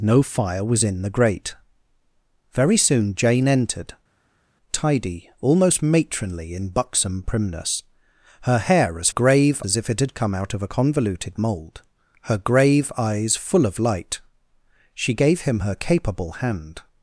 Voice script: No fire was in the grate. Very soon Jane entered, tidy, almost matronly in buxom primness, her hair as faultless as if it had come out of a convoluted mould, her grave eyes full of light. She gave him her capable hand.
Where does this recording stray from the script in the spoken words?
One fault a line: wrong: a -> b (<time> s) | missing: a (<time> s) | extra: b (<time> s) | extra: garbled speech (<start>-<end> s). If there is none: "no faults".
wrong: faultless -> grave (9.1 s)